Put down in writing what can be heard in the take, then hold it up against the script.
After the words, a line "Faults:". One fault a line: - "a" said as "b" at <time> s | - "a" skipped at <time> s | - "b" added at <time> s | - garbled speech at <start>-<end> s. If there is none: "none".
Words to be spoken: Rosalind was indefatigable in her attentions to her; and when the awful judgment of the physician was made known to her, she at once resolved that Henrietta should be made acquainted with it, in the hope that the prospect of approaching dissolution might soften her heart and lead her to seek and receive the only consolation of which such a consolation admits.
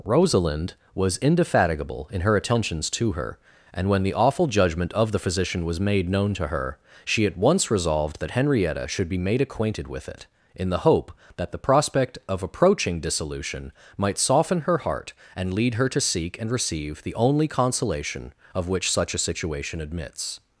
Rosalind was indefatigable in her attentions to her; and when the awful judgment of the physician was made known to her, she at once resolved that Henrietta should be made acquainted with it, in the hope that the prospect of approaching dissolution might soften her heart and lead her to seek and receive the only consolation of which such a situation admits.
Faults:
- "consolation" said as "situation" at 19.2 s